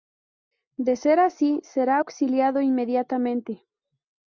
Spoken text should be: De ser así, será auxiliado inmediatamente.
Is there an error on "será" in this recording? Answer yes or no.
no